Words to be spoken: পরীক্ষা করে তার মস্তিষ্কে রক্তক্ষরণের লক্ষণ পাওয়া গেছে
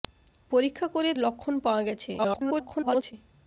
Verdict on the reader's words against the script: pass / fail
fail